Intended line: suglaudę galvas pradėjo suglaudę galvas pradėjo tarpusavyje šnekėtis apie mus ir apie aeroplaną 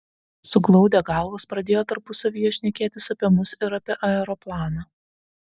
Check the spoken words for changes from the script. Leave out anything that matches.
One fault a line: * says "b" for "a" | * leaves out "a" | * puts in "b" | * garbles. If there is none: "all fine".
* leaves out "suglaudę galvas pradėjo"